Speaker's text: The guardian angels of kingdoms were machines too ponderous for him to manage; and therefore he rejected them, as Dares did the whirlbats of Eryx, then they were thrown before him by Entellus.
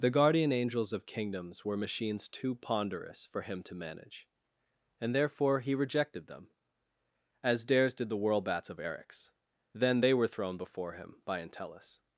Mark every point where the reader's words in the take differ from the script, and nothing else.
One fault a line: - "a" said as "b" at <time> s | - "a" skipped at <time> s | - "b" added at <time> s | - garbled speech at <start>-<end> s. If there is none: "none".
none